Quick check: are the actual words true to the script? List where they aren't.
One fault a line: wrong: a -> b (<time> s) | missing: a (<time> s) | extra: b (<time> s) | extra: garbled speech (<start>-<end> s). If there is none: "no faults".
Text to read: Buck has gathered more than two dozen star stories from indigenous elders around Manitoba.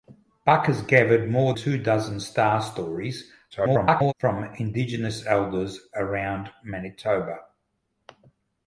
missing: than (1.5 s)
extra: garbled speech (3.5-4.1 s)